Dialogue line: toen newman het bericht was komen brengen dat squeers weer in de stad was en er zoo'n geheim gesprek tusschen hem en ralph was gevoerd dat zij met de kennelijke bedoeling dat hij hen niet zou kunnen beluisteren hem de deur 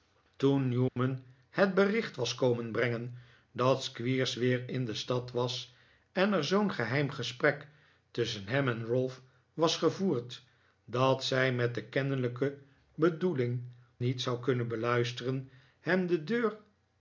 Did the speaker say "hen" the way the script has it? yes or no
no